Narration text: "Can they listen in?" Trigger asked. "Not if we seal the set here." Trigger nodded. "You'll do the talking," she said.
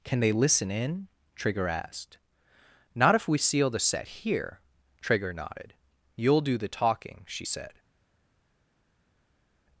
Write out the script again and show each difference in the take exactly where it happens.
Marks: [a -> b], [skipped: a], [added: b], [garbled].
"Can they listen in?" Trigger asked. "Not if we seal the set here." Trigger nodded. "You'll do the talking," she said.